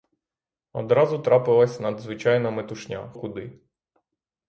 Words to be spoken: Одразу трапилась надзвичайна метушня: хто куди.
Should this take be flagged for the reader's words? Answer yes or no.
yes